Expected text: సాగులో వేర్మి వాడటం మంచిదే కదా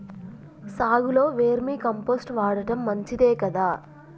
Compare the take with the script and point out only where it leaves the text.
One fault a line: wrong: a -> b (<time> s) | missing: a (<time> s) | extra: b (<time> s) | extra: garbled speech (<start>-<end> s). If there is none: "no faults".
extra: కంపోస్ట్ (1.8 s)